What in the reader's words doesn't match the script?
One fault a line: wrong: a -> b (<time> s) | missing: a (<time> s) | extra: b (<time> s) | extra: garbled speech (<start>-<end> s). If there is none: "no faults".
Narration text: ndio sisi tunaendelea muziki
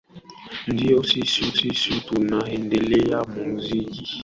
extra: sisi (1.5 s)